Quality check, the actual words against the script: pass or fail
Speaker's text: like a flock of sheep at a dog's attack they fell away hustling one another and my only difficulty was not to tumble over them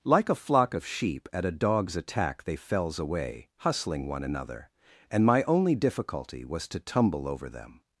fail